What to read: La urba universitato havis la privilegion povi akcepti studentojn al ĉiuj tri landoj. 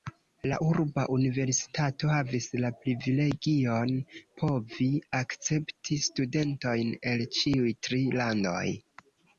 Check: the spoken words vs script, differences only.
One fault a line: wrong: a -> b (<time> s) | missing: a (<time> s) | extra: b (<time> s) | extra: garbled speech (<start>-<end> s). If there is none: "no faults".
wrong: al -> el (7.1 s)